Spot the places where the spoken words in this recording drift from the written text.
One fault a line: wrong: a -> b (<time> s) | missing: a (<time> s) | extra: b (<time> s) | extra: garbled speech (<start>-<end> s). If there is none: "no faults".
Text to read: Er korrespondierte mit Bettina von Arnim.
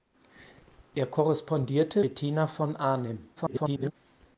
missing: mit (2.0 s)
extra: garbled speech (3.4-3.9 s)